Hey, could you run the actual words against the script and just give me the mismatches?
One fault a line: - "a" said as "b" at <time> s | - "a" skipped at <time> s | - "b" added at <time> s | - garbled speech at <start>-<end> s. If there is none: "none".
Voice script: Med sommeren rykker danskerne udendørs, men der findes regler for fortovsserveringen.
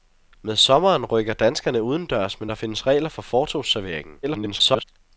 - garbled speech at 4.2-4.8 s